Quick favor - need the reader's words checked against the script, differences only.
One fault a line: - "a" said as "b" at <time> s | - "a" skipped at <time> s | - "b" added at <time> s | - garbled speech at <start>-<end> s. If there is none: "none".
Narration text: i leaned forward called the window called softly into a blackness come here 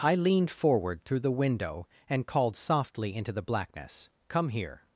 - "called" said as "through" at 1.1 s
- "and" added at 2.1 s
- "a" said as "the" at 3.3 s